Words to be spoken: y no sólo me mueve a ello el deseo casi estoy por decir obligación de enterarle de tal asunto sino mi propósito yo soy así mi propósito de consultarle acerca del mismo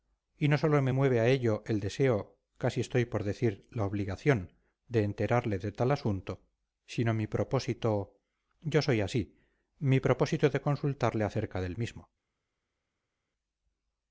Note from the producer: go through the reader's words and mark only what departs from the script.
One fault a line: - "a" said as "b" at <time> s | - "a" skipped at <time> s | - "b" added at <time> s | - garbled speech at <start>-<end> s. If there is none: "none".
- "la" added at 3.7 s